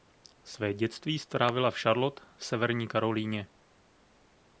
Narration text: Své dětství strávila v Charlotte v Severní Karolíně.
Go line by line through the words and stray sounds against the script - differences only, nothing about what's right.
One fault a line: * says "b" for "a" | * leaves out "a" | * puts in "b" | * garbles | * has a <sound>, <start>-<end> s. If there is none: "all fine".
all fine